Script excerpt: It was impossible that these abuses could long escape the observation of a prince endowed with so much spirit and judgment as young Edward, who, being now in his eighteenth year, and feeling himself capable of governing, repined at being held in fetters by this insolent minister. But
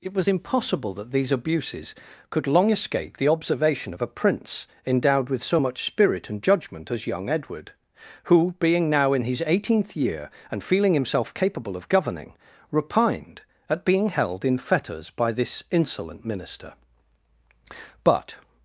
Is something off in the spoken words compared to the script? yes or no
no